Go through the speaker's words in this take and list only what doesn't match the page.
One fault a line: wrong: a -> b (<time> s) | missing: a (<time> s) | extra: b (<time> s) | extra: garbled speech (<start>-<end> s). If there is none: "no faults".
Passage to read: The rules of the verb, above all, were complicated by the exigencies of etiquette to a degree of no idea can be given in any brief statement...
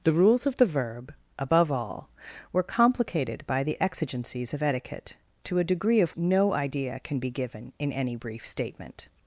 no faults